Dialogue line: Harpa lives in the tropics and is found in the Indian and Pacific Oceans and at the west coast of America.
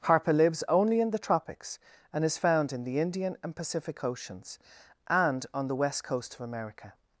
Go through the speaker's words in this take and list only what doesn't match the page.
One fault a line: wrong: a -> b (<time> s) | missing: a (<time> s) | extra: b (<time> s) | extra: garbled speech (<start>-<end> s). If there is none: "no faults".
extra: only (0.7 s)
wrong: at -> on (5.5 s)